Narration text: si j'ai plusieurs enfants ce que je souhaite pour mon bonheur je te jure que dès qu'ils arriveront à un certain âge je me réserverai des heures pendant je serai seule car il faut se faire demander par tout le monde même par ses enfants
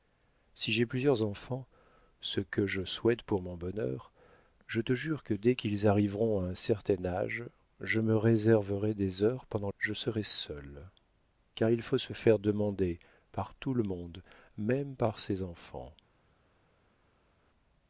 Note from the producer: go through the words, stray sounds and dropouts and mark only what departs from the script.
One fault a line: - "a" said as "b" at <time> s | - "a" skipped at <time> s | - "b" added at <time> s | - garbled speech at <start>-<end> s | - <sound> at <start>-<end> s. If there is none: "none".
none